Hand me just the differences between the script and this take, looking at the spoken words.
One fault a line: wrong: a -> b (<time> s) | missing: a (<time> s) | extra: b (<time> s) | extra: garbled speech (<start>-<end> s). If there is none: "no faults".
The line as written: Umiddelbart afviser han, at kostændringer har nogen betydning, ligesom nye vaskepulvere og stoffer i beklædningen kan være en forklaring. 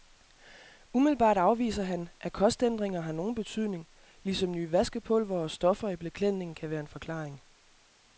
no faults